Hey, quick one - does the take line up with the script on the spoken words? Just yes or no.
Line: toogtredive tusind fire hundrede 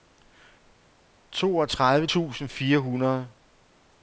yes